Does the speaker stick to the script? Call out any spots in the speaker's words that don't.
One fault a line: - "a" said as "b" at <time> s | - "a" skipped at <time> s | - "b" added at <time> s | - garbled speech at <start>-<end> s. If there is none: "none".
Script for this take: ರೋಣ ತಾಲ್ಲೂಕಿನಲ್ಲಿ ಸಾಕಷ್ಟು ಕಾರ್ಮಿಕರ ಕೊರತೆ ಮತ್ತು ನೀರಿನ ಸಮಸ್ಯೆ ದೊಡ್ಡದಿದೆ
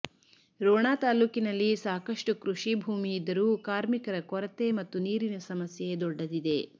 - "ಕೃಷಿ ಭೂಮಿ ಇದ್ದರೂ" added at 2.4 s